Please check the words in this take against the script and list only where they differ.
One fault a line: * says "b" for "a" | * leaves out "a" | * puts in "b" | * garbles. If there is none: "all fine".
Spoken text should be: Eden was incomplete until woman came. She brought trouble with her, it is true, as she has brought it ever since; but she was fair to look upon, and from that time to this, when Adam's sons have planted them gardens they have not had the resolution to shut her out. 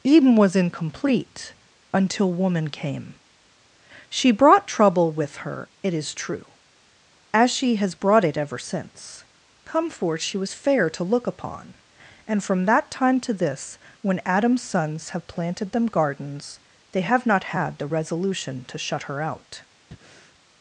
* says "come forth" for "but"